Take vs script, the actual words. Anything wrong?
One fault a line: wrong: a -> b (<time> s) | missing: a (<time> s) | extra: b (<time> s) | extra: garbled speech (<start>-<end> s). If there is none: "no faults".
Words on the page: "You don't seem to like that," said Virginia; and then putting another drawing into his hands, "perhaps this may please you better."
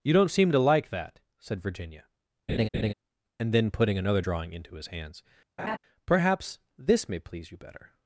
no faults